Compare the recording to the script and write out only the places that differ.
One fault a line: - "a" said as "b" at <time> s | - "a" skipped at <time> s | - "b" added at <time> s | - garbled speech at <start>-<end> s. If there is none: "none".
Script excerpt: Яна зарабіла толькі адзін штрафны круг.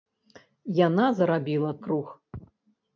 - "толькі адзін штрафны" skipped at 1.7 s